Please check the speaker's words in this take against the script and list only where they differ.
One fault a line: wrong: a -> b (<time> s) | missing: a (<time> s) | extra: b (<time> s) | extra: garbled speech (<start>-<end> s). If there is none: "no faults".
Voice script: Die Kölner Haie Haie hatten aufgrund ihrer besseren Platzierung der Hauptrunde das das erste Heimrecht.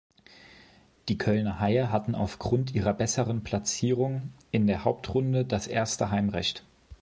missing: Haie (1.9 s)
extra: in (4.5 s)
missing: das (5.7 s)